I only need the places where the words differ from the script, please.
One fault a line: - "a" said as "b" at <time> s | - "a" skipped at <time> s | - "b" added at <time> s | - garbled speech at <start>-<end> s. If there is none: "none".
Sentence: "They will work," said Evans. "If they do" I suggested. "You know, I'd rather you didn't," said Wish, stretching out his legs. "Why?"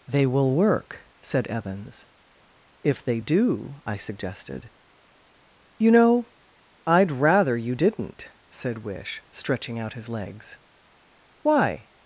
none